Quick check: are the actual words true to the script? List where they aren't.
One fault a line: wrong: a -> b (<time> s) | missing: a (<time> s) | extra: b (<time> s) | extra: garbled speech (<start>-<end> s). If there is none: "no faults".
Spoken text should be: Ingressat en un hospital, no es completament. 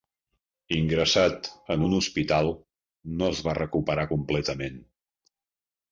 extra: va recuperar (3.5 s)